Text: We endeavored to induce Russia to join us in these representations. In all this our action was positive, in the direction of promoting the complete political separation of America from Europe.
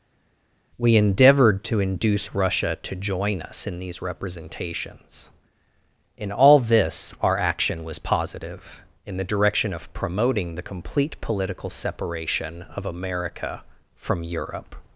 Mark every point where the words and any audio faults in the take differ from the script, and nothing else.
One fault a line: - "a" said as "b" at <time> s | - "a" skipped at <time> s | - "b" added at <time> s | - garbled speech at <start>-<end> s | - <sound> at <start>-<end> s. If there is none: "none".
none